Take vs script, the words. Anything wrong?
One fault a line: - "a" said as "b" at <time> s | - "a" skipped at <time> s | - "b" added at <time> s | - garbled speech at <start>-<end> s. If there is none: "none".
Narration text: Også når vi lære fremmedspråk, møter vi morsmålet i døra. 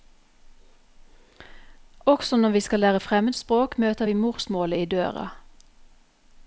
- "skal" added at 2.6 s